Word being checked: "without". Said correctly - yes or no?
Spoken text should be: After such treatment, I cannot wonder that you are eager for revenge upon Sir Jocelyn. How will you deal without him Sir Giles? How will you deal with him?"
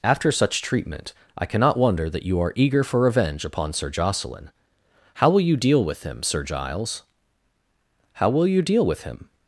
no